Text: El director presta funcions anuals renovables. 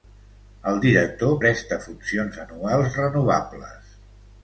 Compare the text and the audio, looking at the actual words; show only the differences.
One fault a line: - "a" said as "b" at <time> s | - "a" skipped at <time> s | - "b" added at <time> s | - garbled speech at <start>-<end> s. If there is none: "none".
none